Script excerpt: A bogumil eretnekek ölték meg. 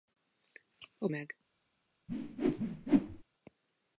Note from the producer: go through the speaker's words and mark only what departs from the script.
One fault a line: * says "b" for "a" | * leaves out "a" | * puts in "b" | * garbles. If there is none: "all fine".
* leaves out "bogumil eretnekek ölték"